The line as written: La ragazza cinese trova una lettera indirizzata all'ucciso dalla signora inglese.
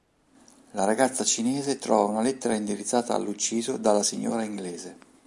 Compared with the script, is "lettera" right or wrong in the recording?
right